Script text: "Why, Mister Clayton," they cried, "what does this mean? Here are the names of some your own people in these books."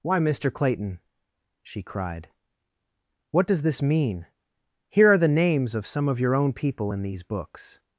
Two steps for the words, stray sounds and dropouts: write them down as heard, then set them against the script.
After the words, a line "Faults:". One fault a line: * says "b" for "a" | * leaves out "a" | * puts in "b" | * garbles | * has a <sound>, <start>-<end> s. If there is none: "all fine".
"Why, Mister Clayton," she cried, "what does this mean? Here are the names of some of your own people in these books."
Faults:
* says "she" for "they"
* puts in "of"